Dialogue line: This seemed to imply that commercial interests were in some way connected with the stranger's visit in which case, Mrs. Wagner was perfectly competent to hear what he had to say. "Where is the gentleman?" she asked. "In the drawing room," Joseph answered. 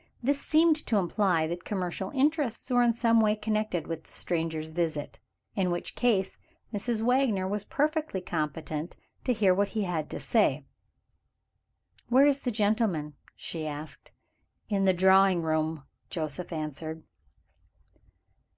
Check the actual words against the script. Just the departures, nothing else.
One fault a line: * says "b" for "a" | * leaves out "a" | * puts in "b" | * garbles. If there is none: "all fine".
all fine